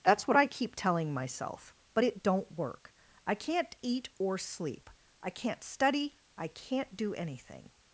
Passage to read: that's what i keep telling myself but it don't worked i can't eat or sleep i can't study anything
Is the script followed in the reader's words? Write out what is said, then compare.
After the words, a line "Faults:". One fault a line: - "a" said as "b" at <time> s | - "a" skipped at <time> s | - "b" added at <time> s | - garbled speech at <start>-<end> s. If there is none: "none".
that's what i keep telling myself but it don't work i can't eat or sleep i can't study i can't do anything
Faults:
- "worked" said as "work" at 2.6 s
- "i can't do" added at 6.4 s